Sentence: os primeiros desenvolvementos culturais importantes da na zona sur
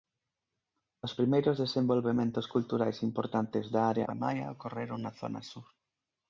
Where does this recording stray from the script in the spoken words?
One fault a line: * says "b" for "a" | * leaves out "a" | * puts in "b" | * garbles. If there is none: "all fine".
* puts in "área maia ocorreron"